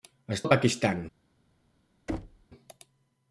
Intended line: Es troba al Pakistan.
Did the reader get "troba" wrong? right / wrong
wrong